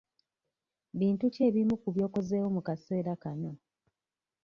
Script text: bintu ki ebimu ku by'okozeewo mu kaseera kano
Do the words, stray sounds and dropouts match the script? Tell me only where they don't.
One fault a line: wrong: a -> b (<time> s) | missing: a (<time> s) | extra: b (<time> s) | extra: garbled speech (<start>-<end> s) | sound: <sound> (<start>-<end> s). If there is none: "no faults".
no faults